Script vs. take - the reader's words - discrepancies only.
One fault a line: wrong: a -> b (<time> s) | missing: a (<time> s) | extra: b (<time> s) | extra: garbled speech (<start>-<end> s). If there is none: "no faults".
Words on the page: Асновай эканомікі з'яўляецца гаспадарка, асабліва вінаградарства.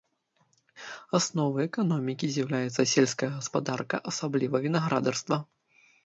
extra: сельская (2.9 s)